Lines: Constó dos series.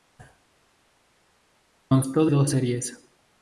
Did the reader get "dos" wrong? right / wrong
right